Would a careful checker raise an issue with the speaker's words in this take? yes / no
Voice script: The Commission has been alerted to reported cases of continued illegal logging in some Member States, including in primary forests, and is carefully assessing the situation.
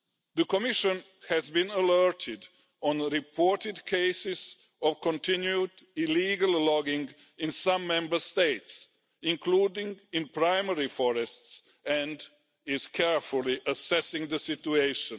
no